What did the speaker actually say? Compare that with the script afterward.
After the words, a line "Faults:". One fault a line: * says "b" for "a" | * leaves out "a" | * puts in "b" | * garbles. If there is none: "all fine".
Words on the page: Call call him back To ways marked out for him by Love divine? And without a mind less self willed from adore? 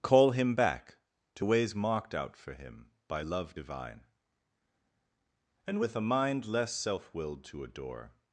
Call him back To ways marked out for him by Love divine? And with a mind less self willed to adore?
Faults:
* leaves out "call"
* says "with" for "without"
* says "to" for "from"